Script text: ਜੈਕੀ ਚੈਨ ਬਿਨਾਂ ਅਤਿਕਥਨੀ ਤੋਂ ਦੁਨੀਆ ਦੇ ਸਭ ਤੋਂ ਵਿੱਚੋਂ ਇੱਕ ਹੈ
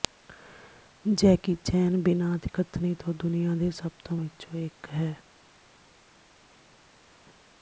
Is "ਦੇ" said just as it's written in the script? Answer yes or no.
yes